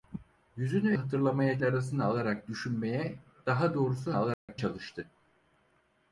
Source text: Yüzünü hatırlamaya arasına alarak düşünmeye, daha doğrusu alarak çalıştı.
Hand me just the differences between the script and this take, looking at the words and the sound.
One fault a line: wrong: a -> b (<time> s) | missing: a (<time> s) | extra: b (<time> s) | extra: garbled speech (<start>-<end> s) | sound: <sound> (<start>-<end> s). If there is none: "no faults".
sound: dropout (4.3-4.5 s)